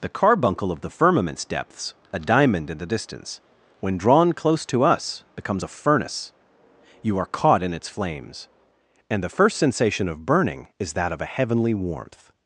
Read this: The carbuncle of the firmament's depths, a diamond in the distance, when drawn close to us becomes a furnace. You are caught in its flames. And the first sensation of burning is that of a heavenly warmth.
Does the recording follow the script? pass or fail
pass